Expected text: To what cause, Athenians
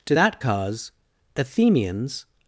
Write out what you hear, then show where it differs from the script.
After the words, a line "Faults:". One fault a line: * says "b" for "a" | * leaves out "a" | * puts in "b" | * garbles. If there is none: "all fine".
To that cause, Athenians
Faults:
* says "that" for "what"